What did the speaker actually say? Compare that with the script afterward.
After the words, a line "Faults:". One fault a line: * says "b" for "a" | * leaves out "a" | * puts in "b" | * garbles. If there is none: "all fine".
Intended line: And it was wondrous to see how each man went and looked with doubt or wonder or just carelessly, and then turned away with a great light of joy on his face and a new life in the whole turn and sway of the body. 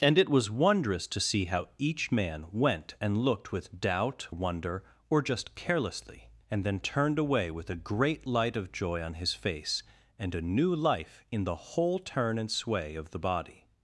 And it was wondrous to see how each man went and looked with doubt wonder or just carelessly, and then turned away with a great light of joy on his face and a new life in the whole turn and sway of the body.
Faults:
* leaves out "or"